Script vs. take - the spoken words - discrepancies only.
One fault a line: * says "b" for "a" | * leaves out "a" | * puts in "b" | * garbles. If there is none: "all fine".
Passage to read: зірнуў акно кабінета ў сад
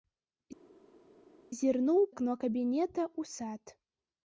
all fine